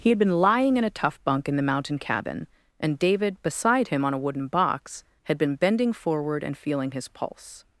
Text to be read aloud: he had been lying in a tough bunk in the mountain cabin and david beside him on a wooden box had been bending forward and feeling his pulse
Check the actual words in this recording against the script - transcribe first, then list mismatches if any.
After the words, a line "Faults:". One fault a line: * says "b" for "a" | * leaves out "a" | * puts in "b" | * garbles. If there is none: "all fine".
he had been lying in a tough bunk in the mountain cabin and david beside him on a wooden box had been bending forward and feeling his pulse
Faults:
all fine